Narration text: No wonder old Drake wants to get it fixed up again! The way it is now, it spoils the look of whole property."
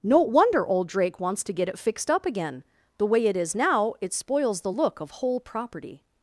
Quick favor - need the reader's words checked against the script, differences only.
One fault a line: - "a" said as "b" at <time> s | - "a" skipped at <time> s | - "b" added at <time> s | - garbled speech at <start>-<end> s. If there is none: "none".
none